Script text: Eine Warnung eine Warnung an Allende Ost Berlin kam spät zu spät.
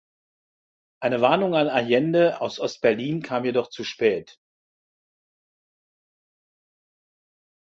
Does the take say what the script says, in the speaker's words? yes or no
no